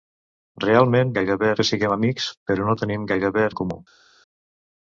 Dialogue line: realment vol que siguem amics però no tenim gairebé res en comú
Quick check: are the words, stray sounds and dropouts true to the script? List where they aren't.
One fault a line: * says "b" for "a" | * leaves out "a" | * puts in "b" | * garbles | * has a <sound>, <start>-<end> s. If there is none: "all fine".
* says "gairebé" for "vol"
* leaves out "res"